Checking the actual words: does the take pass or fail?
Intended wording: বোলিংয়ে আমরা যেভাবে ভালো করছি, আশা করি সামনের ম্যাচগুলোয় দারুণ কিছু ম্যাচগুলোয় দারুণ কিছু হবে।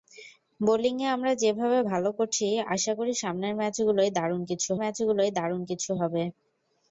pass